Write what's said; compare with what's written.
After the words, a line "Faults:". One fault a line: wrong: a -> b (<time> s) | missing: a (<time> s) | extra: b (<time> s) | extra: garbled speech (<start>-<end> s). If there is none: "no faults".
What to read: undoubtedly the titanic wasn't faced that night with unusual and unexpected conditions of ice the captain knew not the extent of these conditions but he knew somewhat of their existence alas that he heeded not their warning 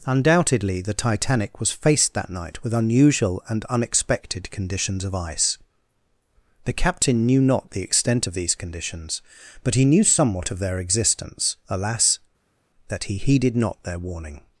undoubtedly the titanic was faced that night with unusual and unexpected conditions of ice the captain knew not the extent of these conditions but he knew somewhat of their existence alas that he heeded not their warning
Faults:
wrong: wasn't -> was (1.6 s)